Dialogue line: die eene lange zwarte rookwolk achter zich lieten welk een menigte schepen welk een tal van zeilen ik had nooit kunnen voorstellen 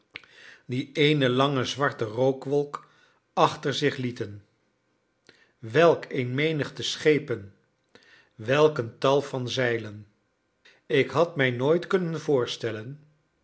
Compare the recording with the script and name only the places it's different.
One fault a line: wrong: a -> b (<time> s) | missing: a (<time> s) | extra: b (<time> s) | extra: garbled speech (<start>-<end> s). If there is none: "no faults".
extra: mij (11.3 s)